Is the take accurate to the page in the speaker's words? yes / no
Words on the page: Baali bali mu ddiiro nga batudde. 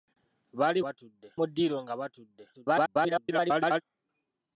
no